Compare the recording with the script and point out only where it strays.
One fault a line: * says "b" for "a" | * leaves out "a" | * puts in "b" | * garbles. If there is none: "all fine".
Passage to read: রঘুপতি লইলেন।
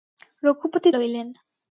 all fine